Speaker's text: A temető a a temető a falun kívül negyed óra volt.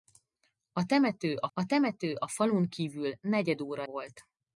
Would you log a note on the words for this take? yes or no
no